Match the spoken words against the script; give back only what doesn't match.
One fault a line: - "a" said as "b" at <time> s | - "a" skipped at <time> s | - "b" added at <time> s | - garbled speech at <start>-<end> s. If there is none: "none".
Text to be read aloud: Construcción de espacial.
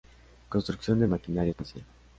- "maquinaria" added at 1.0 s